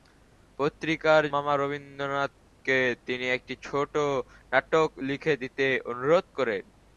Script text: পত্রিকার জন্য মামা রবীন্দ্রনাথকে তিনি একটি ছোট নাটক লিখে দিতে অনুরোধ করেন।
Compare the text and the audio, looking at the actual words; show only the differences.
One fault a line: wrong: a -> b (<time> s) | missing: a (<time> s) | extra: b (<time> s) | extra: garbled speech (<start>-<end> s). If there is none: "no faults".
missing: জন্য (1.2 s)